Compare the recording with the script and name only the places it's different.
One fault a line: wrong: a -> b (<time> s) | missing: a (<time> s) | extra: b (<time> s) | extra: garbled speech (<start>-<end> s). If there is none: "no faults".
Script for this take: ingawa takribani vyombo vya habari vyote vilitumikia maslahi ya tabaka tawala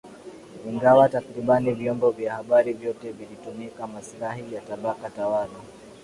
no faults